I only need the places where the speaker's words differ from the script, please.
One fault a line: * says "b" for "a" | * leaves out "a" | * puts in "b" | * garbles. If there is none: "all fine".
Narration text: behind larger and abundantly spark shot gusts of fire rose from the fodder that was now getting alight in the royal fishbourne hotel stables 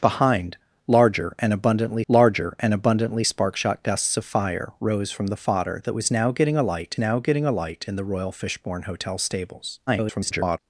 * puts in "larger and abundantly"
* puts in "now getting alight"
* garbles